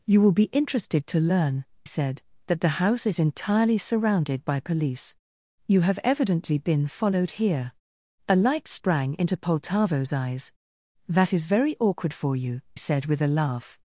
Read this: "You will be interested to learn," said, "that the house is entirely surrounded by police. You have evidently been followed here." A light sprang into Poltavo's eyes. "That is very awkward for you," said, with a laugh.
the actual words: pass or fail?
pass